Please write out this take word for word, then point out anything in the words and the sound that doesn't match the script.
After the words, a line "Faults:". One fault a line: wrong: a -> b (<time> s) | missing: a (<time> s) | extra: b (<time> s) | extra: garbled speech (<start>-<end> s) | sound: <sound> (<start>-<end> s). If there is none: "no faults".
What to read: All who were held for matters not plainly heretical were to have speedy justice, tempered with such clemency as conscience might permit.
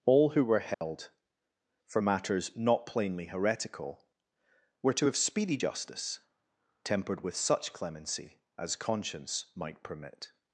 All who were held for matters not plainly heretical were to have speedy justice, tempered with such clemency as conscience might permit.
Faults:
sound: dropout (0.7-0.8 s)